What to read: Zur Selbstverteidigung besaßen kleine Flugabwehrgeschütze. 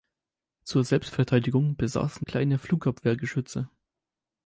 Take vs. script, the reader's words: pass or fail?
pass